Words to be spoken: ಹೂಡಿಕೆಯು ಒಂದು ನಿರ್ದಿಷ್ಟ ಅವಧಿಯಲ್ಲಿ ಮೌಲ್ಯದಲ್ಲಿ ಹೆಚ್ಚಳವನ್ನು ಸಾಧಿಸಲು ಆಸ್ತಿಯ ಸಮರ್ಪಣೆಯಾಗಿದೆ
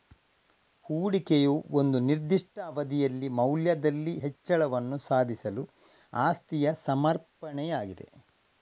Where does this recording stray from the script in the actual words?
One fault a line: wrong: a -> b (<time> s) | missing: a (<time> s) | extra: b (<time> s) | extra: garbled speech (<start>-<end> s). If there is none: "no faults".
no faults